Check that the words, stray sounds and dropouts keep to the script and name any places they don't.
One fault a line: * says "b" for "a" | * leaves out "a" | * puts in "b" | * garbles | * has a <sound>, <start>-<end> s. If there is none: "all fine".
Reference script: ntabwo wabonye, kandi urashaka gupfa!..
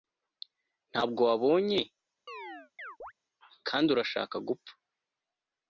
* has a chirp, 2.3-3.1 s